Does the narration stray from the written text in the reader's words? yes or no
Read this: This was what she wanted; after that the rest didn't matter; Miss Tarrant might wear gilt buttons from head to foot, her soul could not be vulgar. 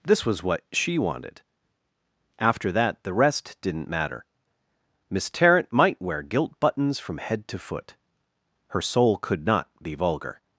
no